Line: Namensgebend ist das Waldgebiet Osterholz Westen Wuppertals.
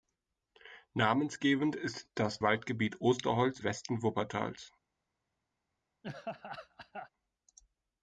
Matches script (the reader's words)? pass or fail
pass